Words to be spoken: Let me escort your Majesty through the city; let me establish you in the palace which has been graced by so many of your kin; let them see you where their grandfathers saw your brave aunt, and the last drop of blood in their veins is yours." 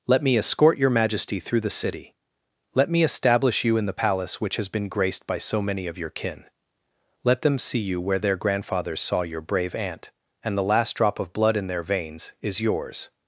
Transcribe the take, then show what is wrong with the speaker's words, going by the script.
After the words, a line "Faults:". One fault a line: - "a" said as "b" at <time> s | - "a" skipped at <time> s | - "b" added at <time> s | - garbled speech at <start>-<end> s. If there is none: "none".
Let me escort your Majesty through the city; let me establish you in the palace which has been graced by so many of your kin; let them see you where their grandfathers saw your brave aunt, and the last drop of blood in their veins is yours."
Faults:
none